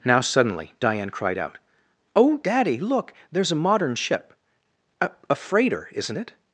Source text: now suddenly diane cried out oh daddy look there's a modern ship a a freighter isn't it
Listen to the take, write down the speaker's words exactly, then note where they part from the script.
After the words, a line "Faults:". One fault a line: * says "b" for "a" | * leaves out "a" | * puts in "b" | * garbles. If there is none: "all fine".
now suddenly diane cried out oh daddy look there's a modern ship a a freighter isn't it
Faults:
all fine